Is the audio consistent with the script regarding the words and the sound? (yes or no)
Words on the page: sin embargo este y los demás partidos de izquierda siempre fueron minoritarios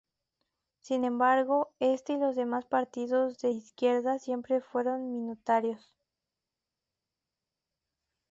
yes